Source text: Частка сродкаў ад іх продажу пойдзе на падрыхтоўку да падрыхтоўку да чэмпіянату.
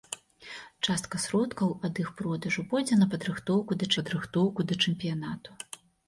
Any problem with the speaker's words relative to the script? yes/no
no